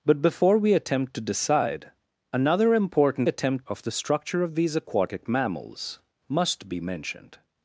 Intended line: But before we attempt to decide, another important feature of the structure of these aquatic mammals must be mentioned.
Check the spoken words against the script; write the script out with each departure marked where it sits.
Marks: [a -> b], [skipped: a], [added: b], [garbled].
But before we attempt to decide, another important [feature -> attempt] of the structure of these aquatic mammals must be mentioned.